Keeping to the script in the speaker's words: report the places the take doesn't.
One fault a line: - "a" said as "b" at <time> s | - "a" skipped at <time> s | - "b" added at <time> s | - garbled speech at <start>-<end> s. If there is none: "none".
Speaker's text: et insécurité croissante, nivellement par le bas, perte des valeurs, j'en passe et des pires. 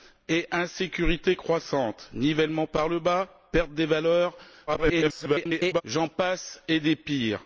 - garbled speech at 4.7-5.8 s